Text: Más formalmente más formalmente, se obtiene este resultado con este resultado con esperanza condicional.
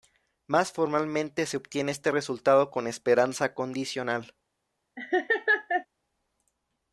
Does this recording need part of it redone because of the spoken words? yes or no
yes